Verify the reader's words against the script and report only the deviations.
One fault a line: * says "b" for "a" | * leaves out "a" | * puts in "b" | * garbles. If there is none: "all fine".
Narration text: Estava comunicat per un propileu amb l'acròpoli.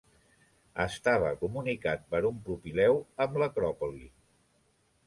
all fine